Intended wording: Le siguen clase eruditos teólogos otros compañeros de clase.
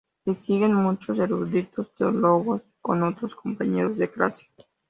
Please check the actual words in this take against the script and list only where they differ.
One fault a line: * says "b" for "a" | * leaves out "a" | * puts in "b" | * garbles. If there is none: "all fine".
* says "muchos" for "clase"
* puts in "con"